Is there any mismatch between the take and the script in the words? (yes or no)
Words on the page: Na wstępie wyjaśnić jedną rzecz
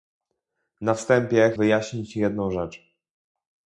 no